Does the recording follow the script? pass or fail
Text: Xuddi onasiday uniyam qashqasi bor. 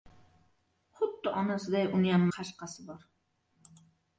pass